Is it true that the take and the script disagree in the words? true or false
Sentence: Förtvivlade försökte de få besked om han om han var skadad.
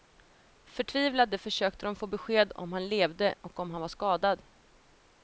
true